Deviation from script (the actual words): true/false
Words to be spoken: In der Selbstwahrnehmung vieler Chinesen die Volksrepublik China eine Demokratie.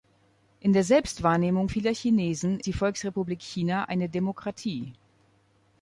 false